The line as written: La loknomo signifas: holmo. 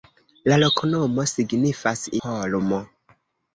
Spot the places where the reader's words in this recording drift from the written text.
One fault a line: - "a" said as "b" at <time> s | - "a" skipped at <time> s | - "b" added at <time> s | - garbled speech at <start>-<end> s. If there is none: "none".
none